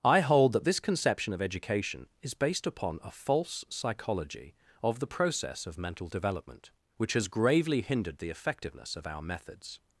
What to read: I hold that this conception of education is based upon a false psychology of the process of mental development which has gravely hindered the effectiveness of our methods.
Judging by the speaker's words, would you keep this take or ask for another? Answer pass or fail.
pass